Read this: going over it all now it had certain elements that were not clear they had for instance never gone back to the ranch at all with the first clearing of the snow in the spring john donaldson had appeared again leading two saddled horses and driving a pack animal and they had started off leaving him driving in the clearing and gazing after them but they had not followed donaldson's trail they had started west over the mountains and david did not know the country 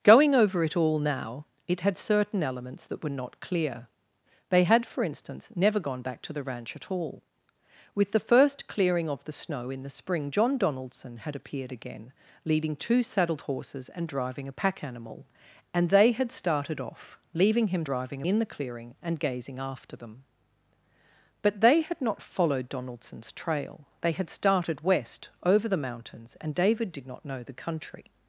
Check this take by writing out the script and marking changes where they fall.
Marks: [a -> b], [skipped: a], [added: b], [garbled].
going over it all now it had certain elements that were not clear they had for instance never gone back to the ranch at all with the first clearing of the snow in the spring john donaldson had appeared again leading two saddled horses and driving a pack animal and they had started off leaving him driving in the clearing and gazing after them but they had not followed donaldson's trail they had started west over the mountains and david did not know the country